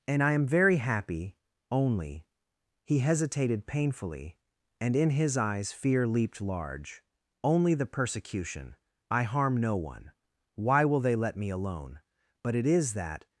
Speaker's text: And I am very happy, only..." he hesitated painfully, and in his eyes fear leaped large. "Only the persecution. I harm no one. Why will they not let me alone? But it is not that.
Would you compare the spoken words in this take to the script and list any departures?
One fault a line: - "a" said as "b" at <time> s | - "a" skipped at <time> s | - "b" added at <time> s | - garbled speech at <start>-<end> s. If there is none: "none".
- "not" skipped at 11.2 s
- "not" skipped at 12.9 s